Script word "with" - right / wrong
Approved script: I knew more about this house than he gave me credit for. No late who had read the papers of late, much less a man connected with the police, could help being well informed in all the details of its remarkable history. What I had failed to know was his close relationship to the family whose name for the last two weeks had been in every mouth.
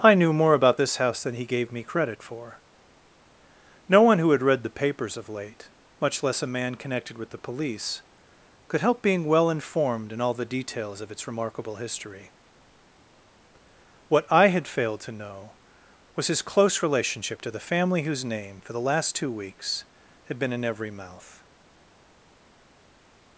right